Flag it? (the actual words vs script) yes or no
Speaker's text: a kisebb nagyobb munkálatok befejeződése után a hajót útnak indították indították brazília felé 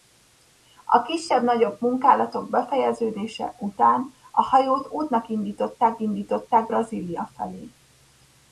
no